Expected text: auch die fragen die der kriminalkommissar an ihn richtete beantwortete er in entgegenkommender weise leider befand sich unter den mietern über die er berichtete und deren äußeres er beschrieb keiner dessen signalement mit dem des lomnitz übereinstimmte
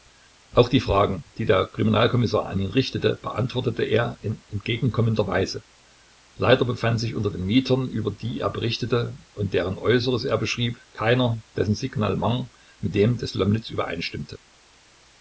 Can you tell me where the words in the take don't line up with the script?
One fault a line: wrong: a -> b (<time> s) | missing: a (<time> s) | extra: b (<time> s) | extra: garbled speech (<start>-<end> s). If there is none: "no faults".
no faults